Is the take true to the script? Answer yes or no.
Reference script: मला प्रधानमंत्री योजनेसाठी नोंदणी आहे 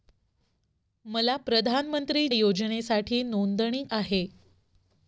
yes